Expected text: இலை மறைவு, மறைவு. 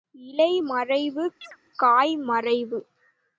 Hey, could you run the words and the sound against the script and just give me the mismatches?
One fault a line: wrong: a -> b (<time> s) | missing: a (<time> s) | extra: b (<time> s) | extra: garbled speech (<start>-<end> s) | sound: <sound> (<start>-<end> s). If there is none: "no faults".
sound: chirp (1.4-1.6 s)
extra: காய் (1.8 s)